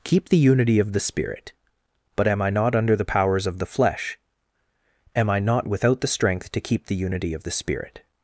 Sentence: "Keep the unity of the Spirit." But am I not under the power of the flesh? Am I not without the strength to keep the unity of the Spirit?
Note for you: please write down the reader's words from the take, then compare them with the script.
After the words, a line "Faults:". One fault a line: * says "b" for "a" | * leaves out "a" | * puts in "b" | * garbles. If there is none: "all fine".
"Keep the unity of the Spirit." But am I not under the powers of the flesh? Am I not without the strength to keep the unity of the Spirit?
Faults:
* says "powers" for "power"